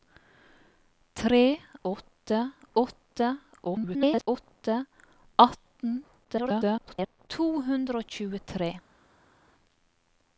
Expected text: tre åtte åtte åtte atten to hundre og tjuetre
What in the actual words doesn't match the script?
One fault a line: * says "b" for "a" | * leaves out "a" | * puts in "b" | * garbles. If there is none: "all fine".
* garbles
* garbles